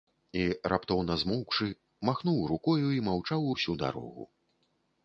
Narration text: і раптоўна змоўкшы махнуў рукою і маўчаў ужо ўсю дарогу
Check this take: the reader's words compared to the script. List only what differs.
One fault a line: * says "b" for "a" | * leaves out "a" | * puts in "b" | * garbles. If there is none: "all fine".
* leaves out "ужо"